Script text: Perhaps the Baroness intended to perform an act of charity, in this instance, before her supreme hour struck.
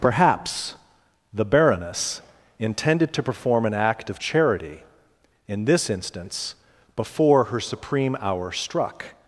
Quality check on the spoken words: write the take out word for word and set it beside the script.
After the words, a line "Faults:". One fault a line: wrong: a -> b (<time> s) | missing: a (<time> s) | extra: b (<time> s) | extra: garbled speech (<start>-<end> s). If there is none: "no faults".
Perhaps the Baroness intended to perform an act of charity, in this instance, before her supreme hour struck.
Faults:
no faults